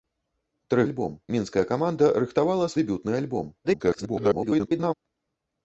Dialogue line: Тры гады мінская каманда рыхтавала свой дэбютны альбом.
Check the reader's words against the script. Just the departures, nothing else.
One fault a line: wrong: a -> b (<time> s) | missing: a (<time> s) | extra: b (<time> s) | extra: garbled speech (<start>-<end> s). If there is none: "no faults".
wrong: гады -> альбом (0.9 s)
missing: свой (2.7 s)
extra: garbled speech (3.6-4.9 s)